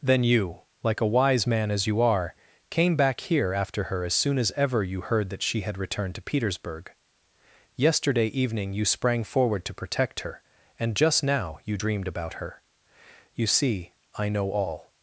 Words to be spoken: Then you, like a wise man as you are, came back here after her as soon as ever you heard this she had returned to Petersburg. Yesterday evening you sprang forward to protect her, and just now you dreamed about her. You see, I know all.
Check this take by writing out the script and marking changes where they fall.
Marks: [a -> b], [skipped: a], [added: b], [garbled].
Then you, like a wise man as you are, came back here after her as soon as ever you heard [this -> that] she had returned to Petersburg. Yesterday evening you sprang forward to protect her, and just now you dreamed about her. You see, I know all.